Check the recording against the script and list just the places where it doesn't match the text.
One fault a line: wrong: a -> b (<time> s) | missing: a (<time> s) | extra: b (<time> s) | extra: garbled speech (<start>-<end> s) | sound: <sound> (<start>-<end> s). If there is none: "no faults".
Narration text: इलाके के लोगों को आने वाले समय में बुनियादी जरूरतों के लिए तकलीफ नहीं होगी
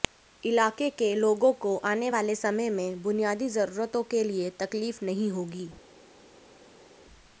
no faults